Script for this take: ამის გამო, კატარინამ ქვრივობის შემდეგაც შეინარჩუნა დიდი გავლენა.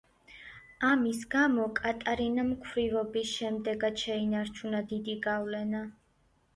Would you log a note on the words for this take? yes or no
no